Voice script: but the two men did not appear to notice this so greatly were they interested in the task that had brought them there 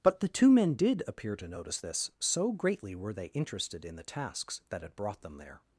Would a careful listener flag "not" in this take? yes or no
yes